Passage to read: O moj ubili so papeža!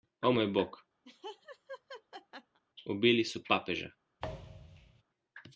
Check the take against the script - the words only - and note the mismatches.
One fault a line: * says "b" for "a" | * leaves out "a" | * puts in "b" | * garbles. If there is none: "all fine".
* puts in "bog"